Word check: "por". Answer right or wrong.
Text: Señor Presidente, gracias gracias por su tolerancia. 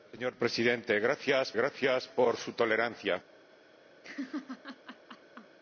right